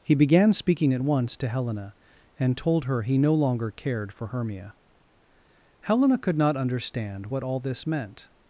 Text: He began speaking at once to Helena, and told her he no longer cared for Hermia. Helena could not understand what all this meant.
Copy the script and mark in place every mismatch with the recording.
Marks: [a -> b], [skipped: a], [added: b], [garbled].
He began speaking at once to Helena, and told her he no longer cared for Hermia. Helena could not understand what all this meant.